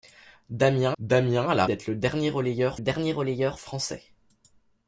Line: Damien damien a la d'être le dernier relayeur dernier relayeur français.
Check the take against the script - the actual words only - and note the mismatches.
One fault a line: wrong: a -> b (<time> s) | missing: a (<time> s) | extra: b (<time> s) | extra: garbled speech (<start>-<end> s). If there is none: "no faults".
no faults